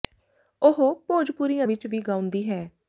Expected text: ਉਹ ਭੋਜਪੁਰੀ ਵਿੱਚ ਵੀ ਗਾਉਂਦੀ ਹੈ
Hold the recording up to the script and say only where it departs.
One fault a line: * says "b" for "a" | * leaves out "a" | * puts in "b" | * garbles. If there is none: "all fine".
all fine